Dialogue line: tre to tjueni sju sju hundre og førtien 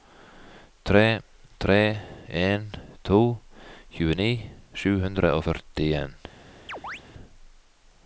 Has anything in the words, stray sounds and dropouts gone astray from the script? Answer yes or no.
yes